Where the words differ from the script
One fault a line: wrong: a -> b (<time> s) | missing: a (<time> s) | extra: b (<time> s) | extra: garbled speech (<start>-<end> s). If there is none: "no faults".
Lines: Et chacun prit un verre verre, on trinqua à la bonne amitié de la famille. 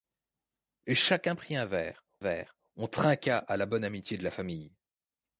no faults